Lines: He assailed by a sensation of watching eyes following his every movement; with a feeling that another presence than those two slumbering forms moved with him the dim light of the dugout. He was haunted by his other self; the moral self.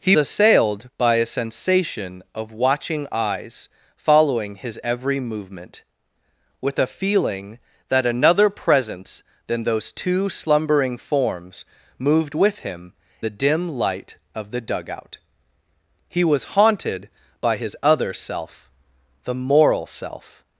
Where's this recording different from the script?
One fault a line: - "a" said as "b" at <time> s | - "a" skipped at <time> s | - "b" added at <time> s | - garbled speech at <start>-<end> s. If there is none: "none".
none